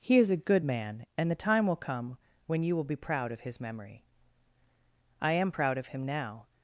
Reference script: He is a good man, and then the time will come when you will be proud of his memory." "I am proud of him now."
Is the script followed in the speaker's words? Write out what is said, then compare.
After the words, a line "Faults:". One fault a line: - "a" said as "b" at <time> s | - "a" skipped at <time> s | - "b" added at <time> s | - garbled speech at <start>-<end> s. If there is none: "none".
He is a good man, and the time will come when you will be proud of his memory." "I am proud of him now."
Faults:
- "then" skipped at 1.3 s